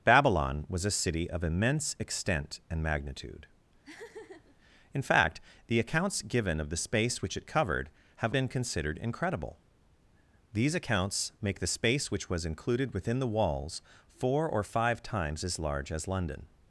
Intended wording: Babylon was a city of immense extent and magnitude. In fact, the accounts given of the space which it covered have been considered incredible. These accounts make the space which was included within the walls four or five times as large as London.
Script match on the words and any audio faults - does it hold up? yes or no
no